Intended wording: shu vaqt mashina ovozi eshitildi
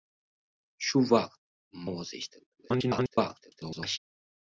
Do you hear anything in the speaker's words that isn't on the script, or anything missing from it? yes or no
yes